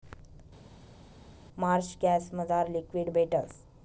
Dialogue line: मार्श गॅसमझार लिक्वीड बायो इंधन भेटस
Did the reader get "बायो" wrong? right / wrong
wrong